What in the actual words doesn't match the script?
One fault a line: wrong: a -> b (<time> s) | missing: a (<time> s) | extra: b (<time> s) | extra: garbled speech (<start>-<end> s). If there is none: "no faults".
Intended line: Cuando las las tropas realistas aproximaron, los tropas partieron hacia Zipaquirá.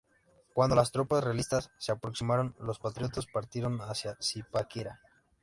missing: las (0.9 s)
extra: se (1.8 s)
wrong: tropas -> patriotas (2.8 s)